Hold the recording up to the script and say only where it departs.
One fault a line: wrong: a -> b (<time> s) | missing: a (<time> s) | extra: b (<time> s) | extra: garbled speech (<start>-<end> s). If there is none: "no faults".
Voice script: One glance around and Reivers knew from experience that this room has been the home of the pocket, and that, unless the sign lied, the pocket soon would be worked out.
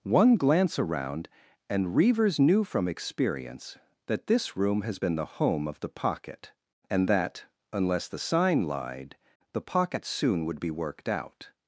no faults